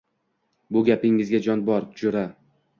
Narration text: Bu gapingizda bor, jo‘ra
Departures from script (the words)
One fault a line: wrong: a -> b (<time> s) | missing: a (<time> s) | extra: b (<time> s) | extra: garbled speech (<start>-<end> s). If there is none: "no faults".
extra: jon (1.5 s)